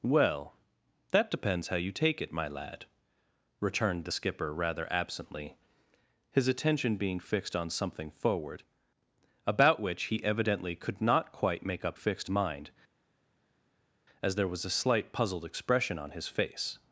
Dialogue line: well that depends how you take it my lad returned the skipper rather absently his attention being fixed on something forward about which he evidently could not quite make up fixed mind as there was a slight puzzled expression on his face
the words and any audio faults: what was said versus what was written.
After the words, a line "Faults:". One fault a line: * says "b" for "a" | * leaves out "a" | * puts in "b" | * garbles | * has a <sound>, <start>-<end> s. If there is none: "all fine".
well that depends how you take it my lad returned the skipper rather absently his attention being fixed on something forward about which he evidently could not quite make up fixed mind as there was a slight puzzled expression on his face
Faults:
all fine